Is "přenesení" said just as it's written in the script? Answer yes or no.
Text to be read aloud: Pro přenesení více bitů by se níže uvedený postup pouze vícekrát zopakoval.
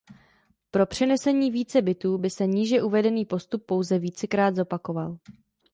yes